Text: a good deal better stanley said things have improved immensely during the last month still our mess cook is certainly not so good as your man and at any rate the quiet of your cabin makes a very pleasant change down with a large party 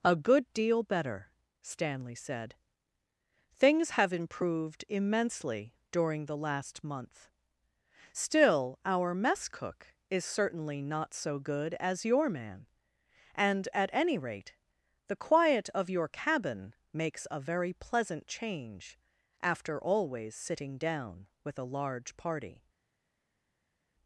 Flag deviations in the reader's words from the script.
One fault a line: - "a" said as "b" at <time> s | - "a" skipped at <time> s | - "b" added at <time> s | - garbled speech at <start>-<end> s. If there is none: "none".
- "after always sitting" added at 19.4 s